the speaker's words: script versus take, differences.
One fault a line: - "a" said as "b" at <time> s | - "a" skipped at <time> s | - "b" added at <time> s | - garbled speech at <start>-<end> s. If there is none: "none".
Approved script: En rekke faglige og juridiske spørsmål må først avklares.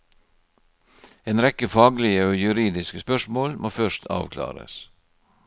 none